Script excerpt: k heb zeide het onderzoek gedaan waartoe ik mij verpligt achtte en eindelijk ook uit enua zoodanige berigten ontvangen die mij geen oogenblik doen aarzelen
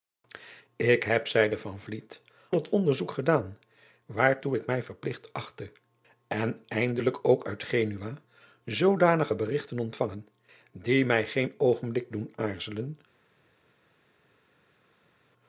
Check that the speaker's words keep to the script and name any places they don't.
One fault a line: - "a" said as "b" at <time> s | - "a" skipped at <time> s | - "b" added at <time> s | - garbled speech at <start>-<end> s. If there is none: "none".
none